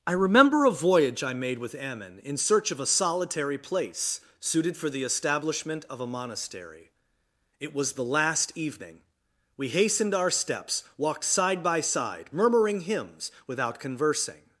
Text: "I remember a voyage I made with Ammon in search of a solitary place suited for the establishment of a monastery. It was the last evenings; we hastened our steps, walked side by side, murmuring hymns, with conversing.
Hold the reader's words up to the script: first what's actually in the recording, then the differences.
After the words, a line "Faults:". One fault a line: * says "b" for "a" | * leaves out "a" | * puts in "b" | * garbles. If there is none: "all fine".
"I remember a voyage I made with Ammon in search of a solitary place suited for the establishment of a monastery. It was the last evening; we hastened our steps, walked side by side, murmuring hymns, without conversing.
Faults:
* says "evening" for "evenings"
* says "without" for "with"